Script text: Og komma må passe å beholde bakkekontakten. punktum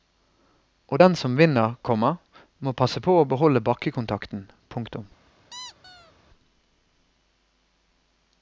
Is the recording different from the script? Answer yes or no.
yes